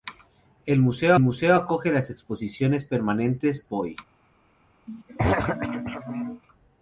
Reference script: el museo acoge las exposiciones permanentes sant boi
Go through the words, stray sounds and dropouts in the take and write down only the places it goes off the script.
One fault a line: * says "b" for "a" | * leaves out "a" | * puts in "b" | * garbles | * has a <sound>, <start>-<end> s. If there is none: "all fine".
* puts in "museo"
* leaves out "sant"
* has a throat clearing, 4.9-6.4 s